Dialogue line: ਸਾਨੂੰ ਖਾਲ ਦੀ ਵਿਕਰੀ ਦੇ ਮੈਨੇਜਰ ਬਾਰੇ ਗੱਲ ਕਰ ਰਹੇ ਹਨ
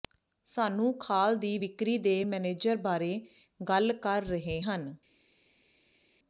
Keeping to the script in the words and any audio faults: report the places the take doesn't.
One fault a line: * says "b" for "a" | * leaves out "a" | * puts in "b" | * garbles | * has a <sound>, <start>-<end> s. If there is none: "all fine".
all fine